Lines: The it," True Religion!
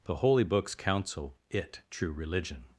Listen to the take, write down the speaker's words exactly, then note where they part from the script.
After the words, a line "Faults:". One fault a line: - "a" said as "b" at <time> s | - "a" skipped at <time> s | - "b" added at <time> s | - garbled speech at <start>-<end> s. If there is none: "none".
The holy Books counsel it," True Religion!
Faults:
- "holy Books counsel" added at 0.1 s